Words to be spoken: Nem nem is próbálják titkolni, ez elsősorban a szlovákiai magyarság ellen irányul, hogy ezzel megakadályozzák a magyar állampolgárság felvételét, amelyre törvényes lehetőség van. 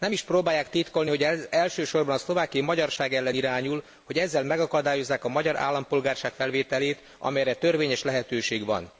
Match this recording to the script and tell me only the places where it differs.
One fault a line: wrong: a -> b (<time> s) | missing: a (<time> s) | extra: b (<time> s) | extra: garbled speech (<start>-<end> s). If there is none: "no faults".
missing: nem (0.1 s)
extra: hogy (1.1 s)